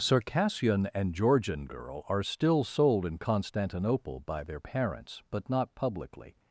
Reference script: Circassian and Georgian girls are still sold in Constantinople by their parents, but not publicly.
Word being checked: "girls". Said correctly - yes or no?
no